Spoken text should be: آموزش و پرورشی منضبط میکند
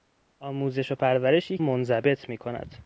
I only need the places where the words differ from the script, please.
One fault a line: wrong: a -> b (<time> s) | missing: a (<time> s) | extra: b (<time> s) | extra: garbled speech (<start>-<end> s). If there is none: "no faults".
no faults